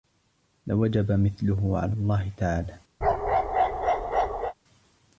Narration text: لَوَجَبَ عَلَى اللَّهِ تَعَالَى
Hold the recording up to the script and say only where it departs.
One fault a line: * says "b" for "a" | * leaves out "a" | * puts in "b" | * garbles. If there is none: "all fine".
* puts in "مِثْلُهُ"